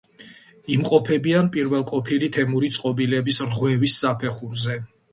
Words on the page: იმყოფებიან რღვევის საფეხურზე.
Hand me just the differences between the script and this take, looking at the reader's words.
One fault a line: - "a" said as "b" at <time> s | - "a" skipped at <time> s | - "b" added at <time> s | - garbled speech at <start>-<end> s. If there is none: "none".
- "პირველყოფილი თემური წყობილების" added at 1.6 s